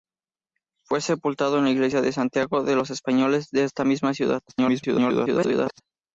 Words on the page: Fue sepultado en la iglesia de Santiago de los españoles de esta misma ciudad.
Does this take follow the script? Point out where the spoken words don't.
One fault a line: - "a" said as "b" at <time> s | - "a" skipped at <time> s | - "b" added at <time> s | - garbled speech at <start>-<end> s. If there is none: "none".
- garbled speech at 4.5-5.8 s